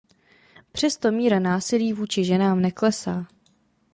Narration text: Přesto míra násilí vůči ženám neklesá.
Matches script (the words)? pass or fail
pass